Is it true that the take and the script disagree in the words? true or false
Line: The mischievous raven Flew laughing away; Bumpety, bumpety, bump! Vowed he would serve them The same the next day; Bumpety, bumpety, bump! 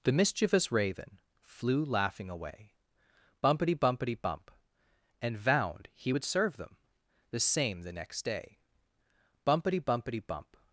true